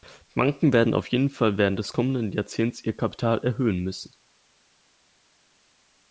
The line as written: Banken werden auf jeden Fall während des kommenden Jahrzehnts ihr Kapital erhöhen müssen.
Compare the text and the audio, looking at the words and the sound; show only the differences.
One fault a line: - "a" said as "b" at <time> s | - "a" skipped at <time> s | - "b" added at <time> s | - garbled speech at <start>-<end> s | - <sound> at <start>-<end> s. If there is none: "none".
none